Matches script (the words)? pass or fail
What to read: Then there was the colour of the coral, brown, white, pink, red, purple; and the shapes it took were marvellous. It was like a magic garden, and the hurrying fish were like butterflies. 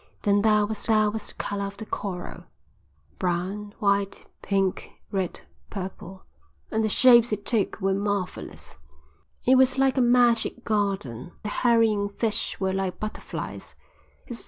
fail